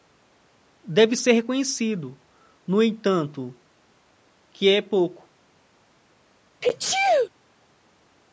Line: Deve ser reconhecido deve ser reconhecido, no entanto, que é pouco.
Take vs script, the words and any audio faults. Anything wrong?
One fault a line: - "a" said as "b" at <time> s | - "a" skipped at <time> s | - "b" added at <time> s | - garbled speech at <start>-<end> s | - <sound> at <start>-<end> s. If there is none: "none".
- "deve ser reconhecido" skipped at 2.2 s
- sneeze at 6.6-7.3 s